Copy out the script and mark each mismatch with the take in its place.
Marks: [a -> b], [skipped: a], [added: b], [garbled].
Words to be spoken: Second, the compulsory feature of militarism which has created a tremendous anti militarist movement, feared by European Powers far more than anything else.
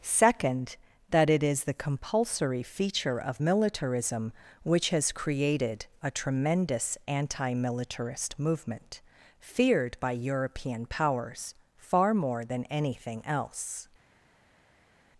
Second, [added: that it is] the compulsory feature of militarism which has created a tremendous anti militarist movement, feared by European Powers far more than anything else.